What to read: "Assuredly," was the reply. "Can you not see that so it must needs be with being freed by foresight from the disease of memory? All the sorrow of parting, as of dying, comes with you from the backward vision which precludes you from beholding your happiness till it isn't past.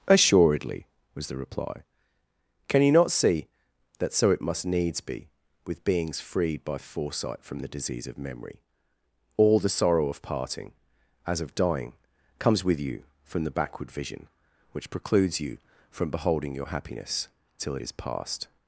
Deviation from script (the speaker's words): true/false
true